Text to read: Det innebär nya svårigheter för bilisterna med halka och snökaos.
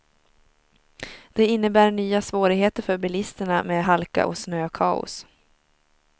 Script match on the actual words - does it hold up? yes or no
yes